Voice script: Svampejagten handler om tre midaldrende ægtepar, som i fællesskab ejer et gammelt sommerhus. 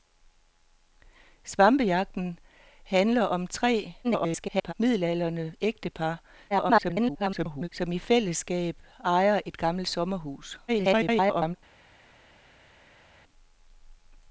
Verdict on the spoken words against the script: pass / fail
fail